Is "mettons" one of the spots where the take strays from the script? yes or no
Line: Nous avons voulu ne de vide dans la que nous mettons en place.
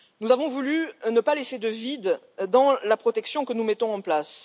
no